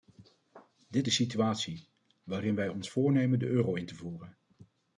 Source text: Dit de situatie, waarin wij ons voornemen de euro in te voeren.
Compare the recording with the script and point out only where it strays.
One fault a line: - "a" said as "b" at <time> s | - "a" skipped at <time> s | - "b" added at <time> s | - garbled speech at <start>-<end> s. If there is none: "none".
none